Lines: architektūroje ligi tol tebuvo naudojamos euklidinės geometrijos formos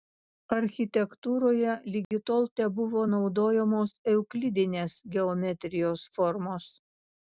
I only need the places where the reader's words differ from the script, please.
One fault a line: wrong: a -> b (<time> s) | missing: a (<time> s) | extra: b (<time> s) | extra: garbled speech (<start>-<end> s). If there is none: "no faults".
no faults